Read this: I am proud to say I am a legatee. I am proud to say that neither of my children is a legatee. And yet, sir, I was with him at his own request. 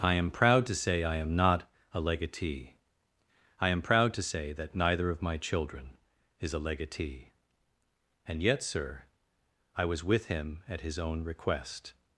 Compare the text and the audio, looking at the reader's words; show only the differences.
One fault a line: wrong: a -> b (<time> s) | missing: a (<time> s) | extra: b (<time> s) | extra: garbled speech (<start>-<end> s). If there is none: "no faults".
extra: not (1.4 s)